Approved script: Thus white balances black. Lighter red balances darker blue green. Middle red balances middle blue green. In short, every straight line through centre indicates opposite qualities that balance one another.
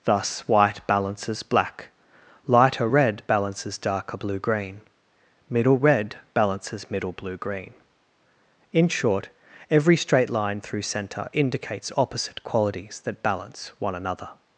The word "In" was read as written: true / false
true